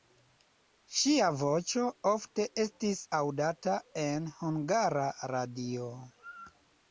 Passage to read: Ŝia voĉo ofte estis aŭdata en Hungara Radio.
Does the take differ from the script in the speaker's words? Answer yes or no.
no